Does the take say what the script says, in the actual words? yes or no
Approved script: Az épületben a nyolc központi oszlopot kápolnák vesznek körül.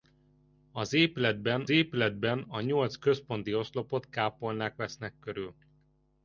no